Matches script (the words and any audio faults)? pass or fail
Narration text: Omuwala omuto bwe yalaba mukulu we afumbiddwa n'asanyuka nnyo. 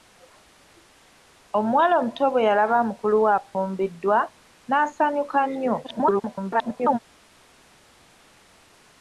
fail